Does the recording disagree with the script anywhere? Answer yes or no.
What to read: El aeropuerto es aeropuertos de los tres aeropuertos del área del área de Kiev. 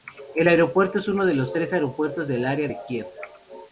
yes